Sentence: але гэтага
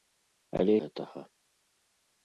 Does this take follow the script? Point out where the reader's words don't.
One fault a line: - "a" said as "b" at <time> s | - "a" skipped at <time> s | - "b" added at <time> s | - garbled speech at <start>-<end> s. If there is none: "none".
none